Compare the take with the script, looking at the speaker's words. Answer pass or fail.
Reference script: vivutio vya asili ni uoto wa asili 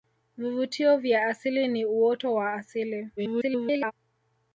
fail